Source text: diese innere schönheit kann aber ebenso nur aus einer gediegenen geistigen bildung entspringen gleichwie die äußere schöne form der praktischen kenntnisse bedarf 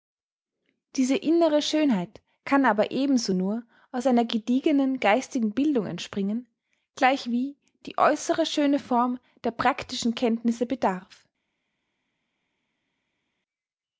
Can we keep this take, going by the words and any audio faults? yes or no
yes